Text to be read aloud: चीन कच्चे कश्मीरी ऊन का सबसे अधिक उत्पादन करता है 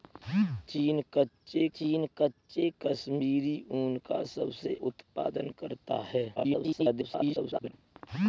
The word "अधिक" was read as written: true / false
false